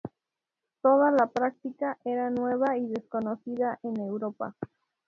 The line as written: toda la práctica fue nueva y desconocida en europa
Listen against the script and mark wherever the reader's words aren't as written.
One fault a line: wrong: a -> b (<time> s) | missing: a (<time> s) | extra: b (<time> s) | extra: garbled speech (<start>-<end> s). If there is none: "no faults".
wrong: fue -> era (2.0 s)